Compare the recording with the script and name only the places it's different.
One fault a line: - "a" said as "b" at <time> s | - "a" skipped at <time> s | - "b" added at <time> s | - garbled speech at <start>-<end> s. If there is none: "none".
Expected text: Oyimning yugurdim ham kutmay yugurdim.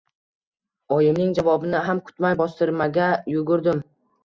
- "yugurdim" said as "javobini" at 1.4 s
- "bostirmaga" added at 2.4 s